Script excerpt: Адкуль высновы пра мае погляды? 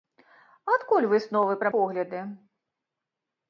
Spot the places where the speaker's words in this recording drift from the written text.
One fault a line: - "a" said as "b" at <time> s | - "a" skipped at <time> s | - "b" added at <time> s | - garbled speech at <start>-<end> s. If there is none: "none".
- "мае" skipped at 1.7 s